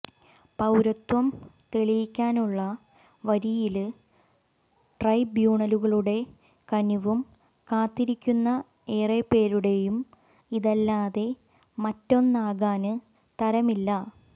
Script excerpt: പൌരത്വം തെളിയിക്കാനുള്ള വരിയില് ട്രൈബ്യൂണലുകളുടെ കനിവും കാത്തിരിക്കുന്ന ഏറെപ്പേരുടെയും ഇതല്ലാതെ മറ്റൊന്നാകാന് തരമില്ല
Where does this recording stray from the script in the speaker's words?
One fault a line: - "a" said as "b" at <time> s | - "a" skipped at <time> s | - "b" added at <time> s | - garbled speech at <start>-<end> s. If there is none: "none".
none